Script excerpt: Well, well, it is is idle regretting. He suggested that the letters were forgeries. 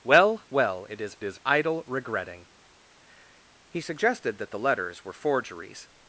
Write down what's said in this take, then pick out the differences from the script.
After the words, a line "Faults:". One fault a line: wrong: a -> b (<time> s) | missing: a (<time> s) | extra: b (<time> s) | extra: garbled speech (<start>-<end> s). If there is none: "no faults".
Well, well, it is is idle regretting. He suggested that the letters were forgeries.
Faults:
no faults